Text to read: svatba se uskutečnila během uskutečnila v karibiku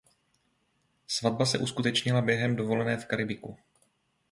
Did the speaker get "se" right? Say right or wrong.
right